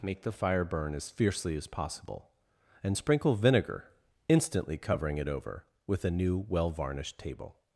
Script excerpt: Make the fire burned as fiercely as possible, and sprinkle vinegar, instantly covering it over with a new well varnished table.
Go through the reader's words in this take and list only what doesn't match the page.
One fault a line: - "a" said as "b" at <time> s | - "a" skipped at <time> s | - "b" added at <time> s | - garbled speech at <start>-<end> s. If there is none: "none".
- "burned" said as "burn" at 0.6 s